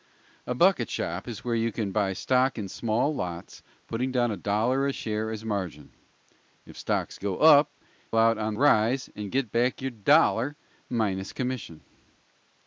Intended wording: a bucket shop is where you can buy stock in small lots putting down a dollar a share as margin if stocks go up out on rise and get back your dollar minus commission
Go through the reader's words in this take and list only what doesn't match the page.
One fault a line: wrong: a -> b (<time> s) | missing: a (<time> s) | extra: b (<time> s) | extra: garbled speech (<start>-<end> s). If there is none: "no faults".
no faults